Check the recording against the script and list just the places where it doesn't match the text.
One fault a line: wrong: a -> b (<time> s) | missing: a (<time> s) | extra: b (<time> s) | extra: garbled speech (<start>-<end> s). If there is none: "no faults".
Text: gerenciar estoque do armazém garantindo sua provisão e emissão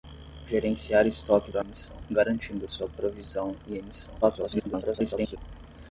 wrong: armazém -> emissão (1.6 s)
extra: garbled speech (4.2-5.4 s)